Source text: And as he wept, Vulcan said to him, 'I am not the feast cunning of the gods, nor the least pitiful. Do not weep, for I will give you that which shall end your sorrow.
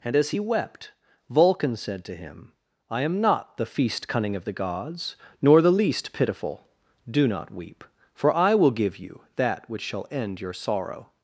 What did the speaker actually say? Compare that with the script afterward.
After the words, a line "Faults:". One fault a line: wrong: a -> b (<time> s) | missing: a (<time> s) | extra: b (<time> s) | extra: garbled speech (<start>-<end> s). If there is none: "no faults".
And as he wept, Vulcan said to him, 'I am not the feast cunning of the gods, nor the least pitiful. Do not weep, for I will give you that which shall end your sorrow.
Faults:
no faults